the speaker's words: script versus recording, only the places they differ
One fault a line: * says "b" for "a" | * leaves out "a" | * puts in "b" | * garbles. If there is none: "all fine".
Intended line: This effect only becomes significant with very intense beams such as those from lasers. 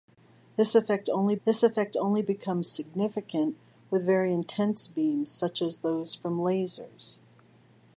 * puts in "this effect only"